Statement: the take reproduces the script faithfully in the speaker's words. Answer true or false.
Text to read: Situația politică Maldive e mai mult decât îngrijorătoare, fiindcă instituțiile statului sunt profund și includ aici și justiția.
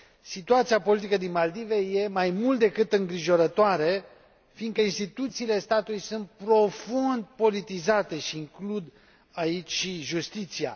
false